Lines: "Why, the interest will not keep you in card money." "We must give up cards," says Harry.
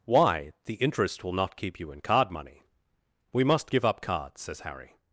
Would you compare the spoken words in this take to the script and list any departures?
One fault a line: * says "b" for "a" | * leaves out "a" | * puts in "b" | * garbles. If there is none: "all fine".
all fine